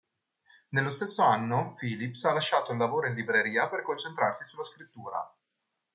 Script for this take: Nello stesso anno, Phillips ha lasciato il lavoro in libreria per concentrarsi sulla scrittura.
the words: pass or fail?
pass